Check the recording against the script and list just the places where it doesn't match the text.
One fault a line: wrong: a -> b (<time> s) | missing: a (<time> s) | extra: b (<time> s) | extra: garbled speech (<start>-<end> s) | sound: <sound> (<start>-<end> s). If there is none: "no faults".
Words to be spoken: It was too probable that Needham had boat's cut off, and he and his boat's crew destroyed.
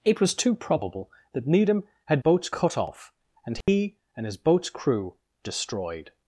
sound: dropout (3.6-3.7 s)